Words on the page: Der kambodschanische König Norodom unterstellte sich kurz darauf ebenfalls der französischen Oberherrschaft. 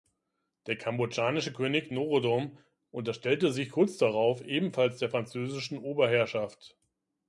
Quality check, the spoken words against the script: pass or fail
pass